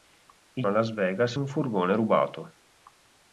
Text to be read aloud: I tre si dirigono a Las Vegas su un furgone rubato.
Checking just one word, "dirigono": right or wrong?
wrong